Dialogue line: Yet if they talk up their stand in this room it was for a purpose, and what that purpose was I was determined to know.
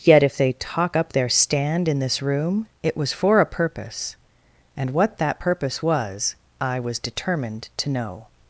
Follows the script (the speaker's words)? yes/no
yes